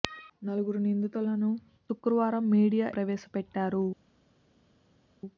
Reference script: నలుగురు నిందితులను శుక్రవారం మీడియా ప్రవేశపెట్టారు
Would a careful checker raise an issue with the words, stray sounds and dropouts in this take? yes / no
no